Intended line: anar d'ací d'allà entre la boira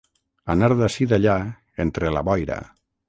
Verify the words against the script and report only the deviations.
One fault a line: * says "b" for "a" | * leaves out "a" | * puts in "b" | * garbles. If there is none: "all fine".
all fine